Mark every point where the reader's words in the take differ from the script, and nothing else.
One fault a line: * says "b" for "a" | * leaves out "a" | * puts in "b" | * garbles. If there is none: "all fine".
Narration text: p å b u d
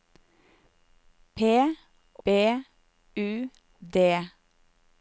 * leaves out "å"